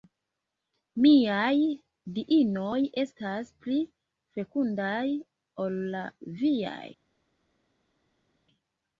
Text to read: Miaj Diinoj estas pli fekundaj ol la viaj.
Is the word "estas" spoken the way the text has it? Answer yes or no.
yes